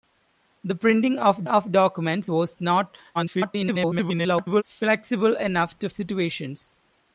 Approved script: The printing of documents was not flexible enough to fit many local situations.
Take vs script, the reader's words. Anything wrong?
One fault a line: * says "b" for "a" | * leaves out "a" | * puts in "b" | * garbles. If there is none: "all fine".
* puts in "of"
* garbles
* leaves out "fit many local"